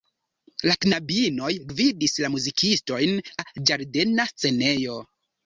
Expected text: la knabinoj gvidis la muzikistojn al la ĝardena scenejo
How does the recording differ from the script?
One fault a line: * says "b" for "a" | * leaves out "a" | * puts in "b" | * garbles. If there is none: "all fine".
* leaves out "al"